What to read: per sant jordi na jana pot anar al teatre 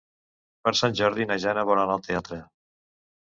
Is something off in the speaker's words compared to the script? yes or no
yes